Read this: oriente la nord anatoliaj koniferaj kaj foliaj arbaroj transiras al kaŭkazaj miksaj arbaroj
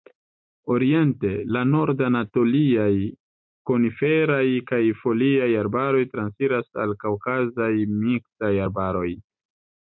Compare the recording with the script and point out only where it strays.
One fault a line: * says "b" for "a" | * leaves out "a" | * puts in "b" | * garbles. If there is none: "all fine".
all fine